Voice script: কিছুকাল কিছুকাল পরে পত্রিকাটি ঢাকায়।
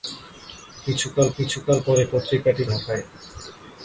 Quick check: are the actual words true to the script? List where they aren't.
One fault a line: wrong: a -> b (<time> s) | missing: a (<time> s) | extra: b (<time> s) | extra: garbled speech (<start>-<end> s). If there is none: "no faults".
no faults